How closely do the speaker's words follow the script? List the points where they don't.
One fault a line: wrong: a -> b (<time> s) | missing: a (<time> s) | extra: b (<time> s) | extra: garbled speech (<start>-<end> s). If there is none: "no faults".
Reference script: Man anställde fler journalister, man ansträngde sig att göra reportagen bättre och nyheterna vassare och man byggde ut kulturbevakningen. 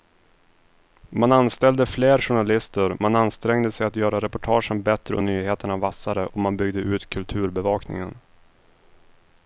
no faults